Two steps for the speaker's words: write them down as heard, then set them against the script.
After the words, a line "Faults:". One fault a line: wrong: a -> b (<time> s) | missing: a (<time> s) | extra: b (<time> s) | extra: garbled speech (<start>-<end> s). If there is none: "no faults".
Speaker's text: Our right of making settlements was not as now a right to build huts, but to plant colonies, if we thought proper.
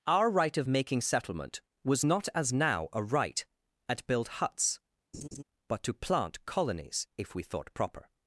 Our right of making settlement was not as now a right at build huts, but to plant colonies, if we thought proper.
Faults:
wrong: settlements -> settlement (1.0 s)
wrong: to -> at (3.9 s)